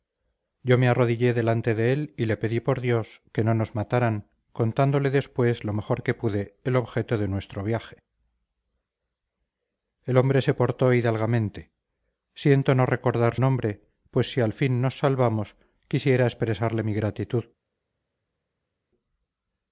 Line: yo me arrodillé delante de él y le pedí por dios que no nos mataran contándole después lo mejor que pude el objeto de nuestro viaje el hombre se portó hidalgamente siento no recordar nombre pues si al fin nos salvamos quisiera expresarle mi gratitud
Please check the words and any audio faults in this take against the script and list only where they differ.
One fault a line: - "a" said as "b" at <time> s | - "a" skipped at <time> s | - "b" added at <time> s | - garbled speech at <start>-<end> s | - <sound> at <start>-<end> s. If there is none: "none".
none